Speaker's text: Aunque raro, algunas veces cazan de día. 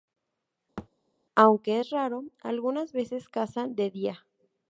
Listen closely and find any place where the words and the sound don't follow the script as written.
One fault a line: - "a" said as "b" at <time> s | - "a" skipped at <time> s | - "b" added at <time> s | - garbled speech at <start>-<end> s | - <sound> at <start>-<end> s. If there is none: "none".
- thud at 0.8-0.9 s
- "es" added at 1.8 s